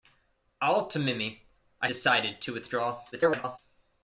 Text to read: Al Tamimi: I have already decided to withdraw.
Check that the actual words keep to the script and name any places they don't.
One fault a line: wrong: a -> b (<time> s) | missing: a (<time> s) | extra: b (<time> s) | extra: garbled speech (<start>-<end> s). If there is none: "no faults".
missing: have already (1.9 s)
extra: garbled speech (3.1-3.6 s)